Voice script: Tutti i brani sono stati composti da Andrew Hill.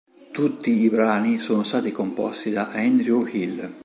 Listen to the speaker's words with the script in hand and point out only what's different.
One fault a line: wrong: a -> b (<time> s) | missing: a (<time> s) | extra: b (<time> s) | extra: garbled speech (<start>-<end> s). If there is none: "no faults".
no faults